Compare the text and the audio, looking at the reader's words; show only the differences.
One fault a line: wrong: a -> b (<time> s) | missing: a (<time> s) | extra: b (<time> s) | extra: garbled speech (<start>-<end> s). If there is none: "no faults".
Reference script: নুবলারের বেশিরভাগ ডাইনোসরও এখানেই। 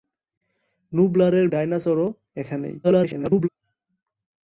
missing: বেশিরভাগ (1.5 s)
extra: garbled speech (2.8-3.5 s)